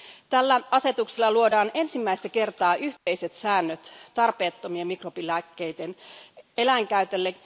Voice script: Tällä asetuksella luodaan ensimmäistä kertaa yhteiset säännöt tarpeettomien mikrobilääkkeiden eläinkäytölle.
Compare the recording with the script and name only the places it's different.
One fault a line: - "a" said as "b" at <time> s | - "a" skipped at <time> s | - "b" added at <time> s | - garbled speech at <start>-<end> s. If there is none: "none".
none